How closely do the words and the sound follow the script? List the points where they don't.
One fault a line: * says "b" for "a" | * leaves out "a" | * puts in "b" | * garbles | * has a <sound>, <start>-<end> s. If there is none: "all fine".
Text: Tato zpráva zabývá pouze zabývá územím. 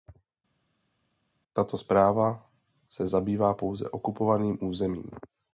* puts in "se"
* says "okupovaným" for "zabývá"